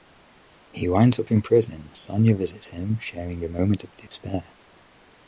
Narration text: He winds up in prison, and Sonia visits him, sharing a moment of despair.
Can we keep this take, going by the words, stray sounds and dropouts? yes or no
no